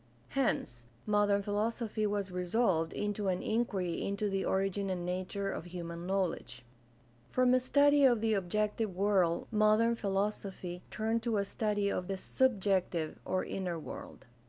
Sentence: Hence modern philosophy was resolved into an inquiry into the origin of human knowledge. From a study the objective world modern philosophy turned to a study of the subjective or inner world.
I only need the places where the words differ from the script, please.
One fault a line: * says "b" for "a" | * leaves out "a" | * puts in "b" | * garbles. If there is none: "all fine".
* puts in "and nature"
* puts in "of"